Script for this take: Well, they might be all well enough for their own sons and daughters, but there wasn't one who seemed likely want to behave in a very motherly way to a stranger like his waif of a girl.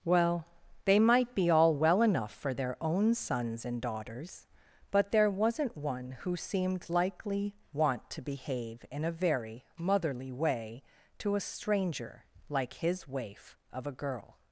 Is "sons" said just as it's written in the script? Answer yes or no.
yes